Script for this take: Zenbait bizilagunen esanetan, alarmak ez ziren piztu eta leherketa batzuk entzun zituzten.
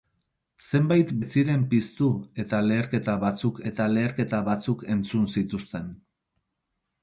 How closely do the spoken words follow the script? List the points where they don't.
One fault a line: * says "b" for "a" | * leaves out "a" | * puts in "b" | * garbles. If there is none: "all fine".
* says "ez ziren piztu eta leherketa batzuk" for "bizilagunen esanetan alarmak ez ziren piztu"